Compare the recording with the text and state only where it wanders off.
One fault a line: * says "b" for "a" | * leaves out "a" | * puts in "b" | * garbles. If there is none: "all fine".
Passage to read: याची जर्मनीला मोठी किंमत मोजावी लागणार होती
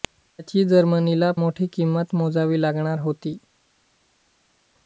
all fine